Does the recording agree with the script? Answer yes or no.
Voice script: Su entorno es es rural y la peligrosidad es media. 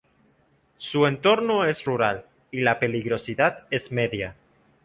no